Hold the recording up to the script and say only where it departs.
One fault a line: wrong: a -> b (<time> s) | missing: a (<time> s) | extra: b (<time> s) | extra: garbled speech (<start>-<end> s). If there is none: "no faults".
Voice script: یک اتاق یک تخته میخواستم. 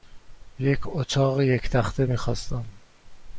no faults